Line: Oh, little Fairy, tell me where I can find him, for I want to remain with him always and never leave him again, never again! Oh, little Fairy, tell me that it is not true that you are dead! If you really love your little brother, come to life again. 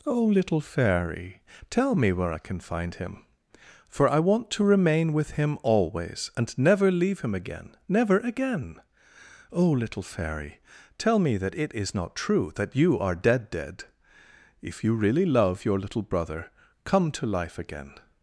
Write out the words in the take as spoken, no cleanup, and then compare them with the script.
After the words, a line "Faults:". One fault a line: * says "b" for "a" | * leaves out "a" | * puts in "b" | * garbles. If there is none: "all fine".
Oh, little Fairy, tell me where I can find him, for I want to remain with him always and never leave him again, never again! Oh, little Fairy, tell me that it is not true that you are dead dead! If you really love your little brother, come to life again.
Faults:
* puts in "dead"